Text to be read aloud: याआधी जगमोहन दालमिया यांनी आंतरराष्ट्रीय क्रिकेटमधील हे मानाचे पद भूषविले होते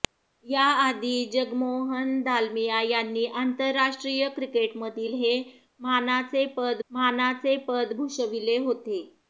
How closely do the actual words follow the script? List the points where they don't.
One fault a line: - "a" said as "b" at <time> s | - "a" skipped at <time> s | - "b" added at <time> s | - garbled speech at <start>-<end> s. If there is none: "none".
- "मानाचे पद" added at 6.9 s